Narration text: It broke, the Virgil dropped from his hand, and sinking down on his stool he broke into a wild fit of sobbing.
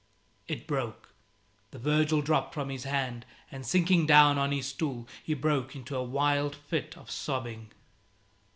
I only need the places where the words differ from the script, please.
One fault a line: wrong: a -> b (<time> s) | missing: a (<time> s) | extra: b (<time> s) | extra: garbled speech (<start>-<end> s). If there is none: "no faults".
no faults